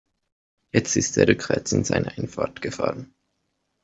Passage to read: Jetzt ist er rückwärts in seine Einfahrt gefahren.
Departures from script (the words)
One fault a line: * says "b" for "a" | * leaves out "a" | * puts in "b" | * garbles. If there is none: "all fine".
all fine